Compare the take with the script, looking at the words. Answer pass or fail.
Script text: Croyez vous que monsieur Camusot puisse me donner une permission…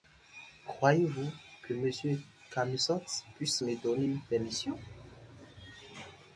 pass